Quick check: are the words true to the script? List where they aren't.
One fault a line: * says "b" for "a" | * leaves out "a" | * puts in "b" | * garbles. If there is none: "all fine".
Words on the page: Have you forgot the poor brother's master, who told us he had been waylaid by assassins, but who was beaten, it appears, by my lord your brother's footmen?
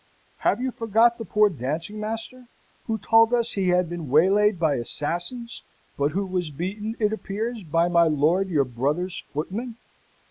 * says "dancing" for "brother's"